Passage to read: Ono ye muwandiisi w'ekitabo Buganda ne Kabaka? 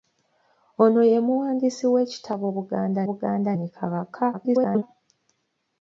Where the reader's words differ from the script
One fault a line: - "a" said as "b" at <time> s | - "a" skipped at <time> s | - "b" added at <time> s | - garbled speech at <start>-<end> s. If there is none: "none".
- "Buganda" added at 3.1 s
- garbled speech at 4.3-4.8 s